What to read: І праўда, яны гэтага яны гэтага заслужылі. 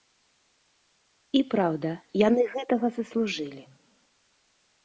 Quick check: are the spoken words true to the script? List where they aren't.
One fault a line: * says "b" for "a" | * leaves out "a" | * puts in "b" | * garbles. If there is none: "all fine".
* leaves out "яны гэтага"